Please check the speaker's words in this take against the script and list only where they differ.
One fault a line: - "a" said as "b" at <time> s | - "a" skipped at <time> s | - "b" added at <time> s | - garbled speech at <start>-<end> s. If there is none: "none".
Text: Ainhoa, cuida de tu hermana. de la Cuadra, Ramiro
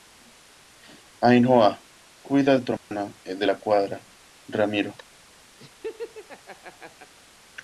none